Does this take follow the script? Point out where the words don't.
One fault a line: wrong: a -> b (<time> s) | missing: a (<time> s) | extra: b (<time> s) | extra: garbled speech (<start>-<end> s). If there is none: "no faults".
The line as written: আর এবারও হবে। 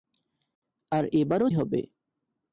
no faults